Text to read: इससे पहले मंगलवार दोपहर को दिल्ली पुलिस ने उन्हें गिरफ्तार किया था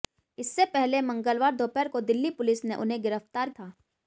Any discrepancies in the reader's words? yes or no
yes